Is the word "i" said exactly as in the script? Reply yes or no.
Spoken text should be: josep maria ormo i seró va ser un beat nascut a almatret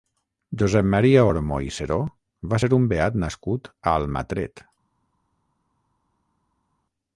yes